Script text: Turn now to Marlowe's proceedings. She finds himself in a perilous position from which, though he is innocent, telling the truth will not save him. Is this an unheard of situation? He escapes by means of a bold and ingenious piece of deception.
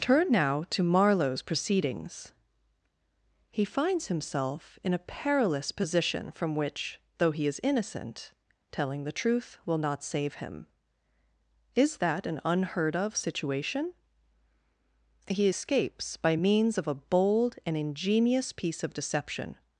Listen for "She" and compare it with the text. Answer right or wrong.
wrong